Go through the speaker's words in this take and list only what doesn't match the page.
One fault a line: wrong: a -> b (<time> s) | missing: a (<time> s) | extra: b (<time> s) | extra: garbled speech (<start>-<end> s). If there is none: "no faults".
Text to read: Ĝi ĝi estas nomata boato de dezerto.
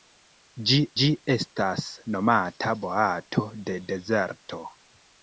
no faults